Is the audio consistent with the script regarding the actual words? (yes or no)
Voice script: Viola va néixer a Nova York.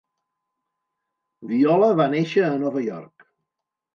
yes